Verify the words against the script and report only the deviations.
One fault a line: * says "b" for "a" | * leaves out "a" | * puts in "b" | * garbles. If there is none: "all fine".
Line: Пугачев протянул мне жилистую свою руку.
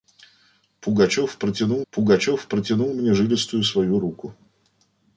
* puts in "пугачев протянул"